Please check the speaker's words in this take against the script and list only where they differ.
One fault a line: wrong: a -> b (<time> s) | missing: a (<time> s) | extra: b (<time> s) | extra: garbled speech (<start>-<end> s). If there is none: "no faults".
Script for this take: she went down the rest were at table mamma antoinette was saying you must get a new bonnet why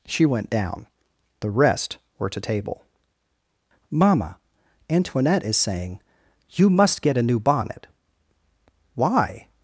wrong: at -> to (2.3 s)
wrong: was -> is (5.4 s)